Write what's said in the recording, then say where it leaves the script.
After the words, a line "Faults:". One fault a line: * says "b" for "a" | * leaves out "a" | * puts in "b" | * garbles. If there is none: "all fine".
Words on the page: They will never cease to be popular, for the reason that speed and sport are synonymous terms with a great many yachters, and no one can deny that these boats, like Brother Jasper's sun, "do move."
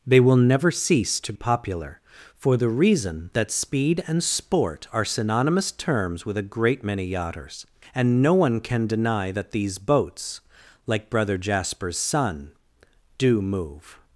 They will never cease to popular, for the reason that speed and sport are synonymous terms with a great many yachters, and no one can deny that these boats, like Brother Jasper's sun, "do move."
Faults:
* leaves out "be"